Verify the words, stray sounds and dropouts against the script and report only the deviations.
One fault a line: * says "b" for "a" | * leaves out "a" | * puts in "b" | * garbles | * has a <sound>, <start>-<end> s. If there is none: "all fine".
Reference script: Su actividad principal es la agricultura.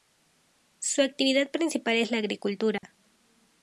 * has a dropout, 2.8-2.8 s